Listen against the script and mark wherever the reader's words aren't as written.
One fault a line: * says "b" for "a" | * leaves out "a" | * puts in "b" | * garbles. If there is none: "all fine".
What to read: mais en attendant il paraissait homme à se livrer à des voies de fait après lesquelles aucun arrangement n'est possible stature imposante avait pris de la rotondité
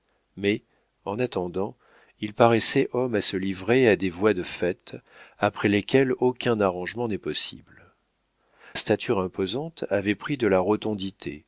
all fine